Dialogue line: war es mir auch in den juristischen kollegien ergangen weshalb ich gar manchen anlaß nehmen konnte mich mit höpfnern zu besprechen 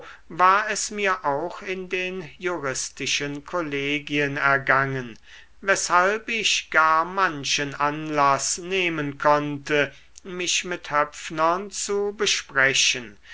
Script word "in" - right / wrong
right